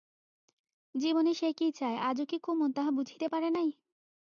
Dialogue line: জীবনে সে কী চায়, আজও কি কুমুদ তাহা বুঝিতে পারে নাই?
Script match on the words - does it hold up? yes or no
yes